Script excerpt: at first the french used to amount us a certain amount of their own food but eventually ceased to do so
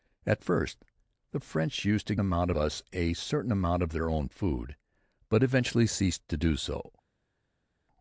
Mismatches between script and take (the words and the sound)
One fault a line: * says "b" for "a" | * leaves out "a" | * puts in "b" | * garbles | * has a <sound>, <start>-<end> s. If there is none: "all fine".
all fine